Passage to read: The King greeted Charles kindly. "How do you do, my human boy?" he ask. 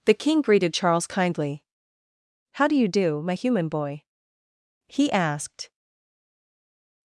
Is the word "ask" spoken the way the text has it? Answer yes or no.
no